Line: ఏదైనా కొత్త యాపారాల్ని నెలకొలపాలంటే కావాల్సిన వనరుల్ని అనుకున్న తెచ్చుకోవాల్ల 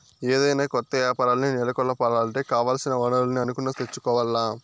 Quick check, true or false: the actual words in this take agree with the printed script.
true